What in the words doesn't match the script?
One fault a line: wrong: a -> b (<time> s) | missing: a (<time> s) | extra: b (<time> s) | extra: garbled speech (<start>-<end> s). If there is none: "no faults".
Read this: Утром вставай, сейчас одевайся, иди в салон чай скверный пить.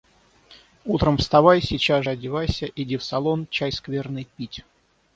no faults